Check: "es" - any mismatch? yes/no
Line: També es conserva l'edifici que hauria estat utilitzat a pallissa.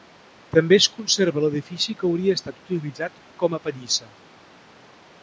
no